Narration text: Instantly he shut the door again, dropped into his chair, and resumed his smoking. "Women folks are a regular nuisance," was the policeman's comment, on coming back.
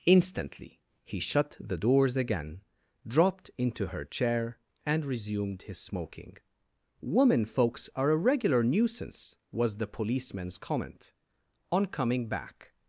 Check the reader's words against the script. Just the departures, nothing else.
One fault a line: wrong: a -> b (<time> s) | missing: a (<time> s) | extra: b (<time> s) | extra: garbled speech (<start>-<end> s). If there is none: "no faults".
wrong: door -> doors (1.8 s)
wrong: his -> her (3.9 s)